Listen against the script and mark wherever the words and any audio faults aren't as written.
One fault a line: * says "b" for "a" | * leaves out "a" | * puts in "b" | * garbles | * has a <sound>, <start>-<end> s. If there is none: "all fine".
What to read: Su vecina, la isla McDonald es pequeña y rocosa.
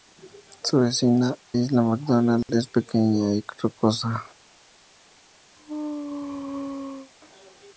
* leaves out "la"
* has a dropout, 2.4-2.5 s
* has a sneeze, 5.6-7.1 s